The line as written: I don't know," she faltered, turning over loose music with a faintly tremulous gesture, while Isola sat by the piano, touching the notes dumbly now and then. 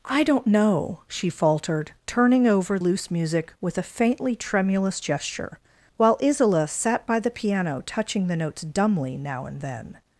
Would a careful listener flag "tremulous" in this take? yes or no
no